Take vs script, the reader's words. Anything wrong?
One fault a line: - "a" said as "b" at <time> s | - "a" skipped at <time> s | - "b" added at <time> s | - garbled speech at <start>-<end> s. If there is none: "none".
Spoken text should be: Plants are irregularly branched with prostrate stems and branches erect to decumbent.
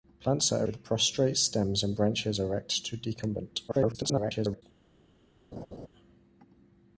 - "irregularly branched" skipped at 0.6 s
- garbled speech at 3.7-4.6 s